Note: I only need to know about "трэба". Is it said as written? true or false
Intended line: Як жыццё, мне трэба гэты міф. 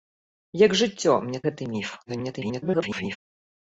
false